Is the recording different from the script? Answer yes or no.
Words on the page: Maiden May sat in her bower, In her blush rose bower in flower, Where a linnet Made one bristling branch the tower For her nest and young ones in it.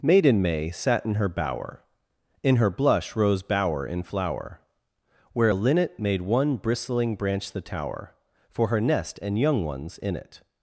no